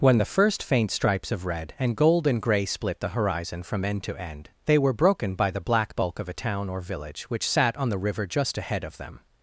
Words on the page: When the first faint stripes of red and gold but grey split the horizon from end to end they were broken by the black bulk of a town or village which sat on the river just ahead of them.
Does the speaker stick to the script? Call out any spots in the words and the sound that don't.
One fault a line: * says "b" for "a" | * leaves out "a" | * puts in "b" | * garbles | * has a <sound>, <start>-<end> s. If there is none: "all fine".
* says "and" for "but"